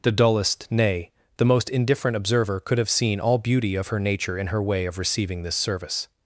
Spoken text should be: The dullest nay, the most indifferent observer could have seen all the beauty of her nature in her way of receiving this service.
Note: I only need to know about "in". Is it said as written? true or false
true